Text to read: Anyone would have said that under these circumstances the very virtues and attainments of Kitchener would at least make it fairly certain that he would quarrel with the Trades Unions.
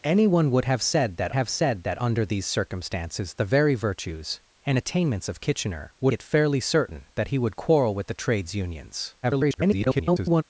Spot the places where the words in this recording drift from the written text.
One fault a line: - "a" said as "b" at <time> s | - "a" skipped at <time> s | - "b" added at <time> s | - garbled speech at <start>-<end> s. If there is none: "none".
- "have said that" added at 1.3 s
- "at least make" skipped at 6.1 s
- garbled speech at 9.2-10.4 s